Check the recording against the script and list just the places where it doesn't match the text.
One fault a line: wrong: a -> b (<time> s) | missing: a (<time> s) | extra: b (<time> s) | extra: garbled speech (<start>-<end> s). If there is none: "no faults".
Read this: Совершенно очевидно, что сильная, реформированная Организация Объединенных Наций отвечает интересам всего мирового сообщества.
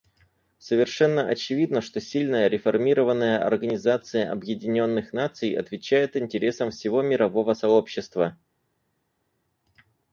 no faults